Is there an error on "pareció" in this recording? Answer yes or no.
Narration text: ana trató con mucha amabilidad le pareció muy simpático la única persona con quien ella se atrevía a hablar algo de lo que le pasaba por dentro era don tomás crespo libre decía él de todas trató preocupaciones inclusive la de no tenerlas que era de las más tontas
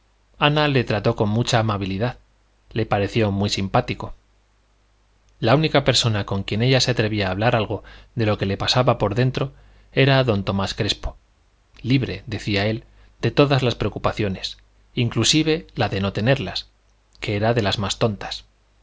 no